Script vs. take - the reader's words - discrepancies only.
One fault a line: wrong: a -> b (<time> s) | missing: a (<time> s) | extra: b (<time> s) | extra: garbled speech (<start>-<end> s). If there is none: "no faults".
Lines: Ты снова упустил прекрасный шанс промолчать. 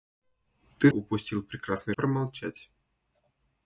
missing: снова (0.9 s)
missing: шанс (1.9 s)